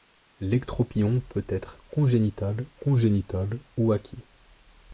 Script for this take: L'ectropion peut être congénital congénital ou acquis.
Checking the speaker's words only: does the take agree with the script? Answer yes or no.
yes